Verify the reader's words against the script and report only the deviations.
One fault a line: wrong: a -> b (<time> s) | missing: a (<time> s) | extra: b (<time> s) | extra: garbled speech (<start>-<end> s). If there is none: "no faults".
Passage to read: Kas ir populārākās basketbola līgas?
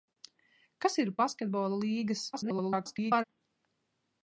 missing: populārākās (1.1 s)
extra: garbled speech (2.3-3.2 s)